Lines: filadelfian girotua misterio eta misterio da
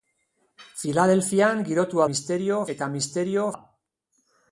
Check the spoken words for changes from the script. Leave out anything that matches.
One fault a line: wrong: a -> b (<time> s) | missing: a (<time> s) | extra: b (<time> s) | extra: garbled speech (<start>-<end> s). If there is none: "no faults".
no faults